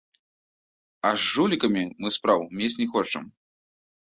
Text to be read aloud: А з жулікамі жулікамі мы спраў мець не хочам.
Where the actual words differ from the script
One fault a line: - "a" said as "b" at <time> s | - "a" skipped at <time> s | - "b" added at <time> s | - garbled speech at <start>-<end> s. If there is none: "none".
- "жулікамі" skipped at 1.8 s